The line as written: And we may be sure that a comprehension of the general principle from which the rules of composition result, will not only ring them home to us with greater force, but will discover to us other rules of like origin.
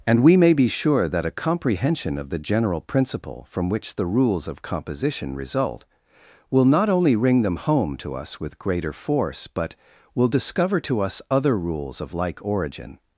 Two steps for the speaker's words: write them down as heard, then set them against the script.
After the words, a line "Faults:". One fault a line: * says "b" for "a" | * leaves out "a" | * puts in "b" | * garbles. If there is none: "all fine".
And we may be sure that a comprehension of the general principle from which the rules of composition result, will not only ring them home to us with greater force, but will discover to us other rules of like origin.
Faults:
all fine